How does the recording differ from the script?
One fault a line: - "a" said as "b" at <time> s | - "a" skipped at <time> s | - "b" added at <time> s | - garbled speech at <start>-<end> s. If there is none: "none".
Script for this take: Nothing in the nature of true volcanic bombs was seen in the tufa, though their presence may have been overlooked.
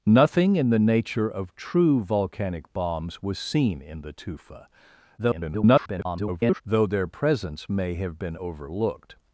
- garbled speech at 5.2-6.6 s